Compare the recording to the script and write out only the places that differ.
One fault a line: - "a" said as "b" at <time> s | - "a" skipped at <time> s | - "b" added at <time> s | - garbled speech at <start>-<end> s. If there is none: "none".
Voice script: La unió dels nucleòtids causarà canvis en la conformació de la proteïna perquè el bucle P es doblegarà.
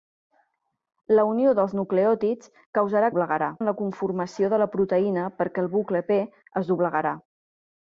- "canvis" said as "doblegarà" at 3.1 s